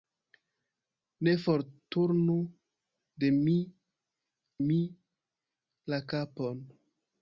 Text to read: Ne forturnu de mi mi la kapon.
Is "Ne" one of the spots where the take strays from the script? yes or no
no